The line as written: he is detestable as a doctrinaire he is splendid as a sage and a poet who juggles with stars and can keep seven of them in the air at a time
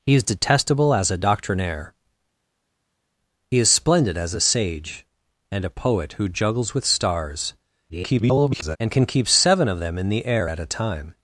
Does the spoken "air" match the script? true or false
true